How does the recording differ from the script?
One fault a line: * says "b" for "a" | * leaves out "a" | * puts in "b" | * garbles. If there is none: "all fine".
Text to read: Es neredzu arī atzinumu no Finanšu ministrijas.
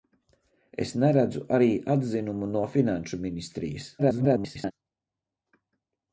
* garbles